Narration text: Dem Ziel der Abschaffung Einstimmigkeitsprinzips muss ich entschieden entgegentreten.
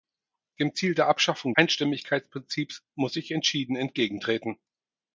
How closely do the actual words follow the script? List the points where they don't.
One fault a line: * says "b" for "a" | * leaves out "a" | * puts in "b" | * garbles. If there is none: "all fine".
all fine